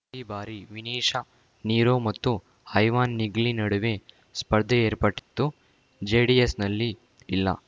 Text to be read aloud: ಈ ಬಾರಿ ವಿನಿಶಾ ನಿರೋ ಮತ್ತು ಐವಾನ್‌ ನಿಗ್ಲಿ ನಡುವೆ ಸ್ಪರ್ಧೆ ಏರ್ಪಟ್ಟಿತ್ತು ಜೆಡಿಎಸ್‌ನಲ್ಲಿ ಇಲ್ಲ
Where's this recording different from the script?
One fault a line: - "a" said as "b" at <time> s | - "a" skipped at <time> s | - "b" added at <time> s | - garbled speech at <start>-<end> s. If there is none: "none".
none